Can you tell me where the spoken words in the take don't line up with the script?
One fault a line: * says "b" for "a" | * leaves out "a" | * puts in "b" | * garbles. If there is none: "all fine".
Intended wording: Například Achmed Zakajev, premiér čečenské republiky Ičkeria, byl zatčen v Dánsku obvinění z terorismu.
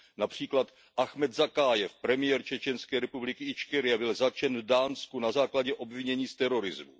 * puts in "na základě"